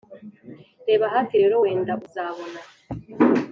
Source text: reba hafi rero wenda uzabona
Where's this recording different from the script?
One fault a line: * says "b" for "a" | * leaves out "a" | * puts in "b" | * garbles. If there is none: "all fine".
all fine